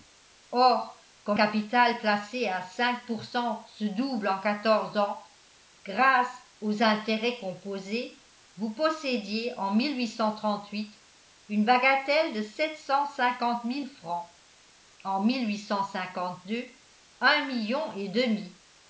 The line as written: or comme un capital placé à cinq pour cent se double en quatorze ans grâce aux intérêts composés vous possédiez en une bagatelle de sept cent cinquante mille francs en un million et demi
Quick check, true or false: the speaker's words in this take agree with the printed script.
false